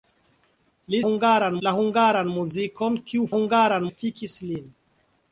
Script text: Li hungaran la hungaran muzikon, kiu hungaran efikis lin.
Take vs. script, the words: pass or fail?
pass